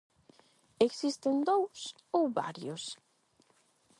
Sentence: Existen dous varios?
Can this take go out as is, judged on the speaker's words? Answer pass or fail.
fail